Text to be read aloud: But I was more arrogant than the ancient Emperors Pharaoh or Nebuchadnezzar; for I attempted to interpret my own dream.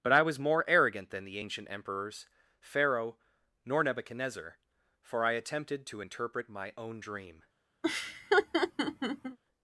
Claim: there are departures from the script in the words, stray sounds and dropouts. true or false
true